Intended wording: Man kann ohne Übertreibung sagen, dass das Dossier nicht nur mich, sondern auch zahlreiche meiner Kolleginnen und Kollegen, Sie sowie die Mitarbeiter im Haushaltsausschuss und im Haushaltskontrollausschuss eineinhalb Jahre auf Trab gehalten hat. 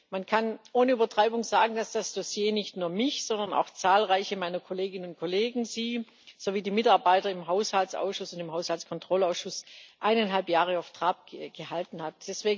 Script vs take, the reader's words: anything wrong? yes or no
no